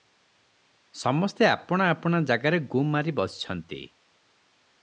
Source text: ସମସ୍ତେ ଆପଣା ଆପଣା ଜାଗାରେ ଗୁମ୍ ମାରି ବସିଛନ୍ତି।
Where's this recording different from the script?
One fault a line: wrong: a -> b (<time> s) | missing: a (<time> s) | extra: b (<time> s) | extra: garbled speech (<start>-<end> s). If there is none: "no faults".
no faults